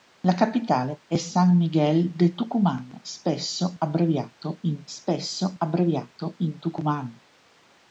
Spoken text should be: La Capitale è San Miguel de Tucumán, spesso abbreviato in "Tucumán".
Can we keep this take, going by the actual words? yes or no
no